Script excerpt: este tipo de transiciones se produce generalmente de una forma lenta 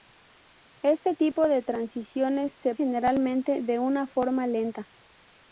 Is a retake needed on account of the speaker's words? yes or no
yes